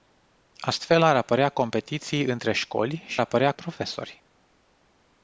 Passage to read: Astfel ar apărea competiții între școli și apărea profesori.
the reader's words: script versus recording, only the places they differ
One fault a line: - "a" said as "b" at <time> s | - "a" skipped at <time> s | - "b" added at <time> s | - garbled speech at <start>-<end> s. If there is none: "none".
none